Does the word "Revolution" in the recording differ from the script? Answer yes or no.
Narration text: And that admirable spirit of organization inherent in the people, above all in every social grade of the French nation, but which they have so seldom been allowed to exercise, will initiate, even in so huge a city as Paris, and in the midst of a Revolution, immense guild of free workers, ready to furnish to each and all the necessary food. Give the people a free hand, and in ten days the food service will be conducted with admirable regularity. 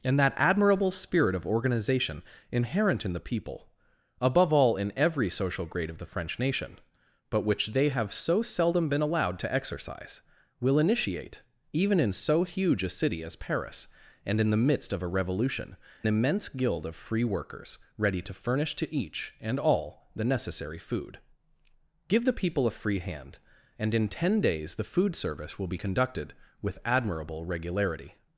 no